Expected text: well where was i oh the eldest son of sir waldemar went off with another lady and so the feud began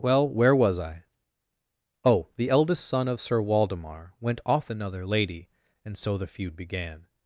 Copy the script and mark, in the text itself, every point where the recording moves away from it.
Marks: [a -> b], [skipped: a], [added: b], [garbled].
well where was i oh the eldest son of sir waldemar went off [skipped: with] another lady and so the feud began